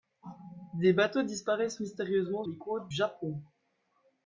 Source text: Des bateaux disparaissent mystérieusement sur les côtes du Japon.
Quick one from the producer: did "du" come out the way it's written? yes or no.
no